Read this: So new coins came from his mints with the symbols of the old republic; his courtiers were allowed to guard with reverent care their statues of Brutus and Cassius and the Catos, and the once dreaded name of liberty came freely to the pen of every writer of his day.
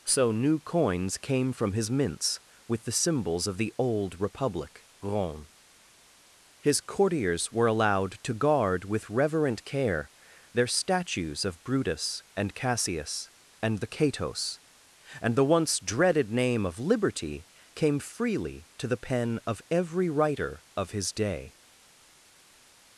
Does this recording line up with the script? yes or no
no